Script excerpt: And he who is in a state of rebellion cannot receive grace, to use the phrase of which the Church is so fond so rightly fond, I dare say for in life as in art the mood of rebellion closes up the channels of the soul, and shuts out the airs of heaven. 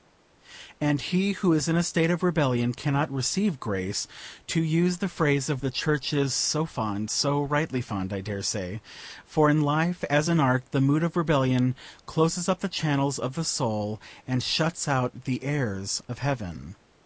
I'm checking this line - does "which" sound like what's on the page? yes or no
no